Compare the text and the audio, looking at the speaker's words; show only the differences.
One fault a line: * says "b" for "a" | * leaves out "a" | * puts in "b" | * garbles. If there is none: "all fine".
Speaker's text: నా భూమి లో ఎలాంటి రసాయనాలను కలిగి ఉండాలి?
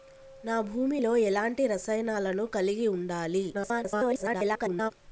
* garbles